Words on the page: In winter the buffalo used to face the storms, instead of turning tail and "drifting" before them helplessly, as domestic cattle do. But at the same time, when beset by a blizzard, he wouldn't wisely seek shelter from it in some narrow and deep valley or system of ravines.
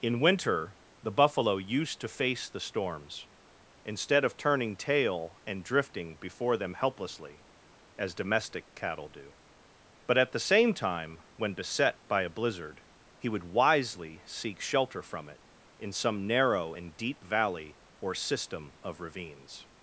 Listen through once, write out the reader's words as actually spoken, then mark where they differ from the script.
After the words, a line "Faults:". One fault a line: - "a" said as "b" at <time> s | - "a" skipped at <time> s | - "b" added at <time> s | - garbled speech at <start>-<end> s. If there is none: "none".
In winter the buffalo used to face the storms, instead of turning tail and "drifting" before them helplessly, as domestic cattle do. But at the same time, when beset by a blizzard, he would wisely seek shelter from it in some narrow and deep valley or system of ravines.
Faults:
- "wouldn't" said as "would" at 13.3 s